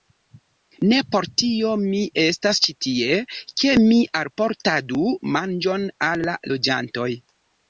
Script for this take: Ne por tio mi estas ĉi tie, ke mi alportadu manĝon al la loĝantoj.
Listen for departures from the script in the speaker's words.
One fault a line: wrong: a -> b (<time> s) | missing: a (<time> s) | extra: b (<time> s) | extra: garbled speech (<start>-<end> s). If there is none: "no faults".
no faults